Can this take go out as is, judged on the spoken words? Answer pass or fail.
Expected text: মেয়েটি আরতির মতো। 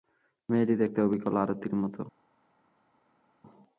fail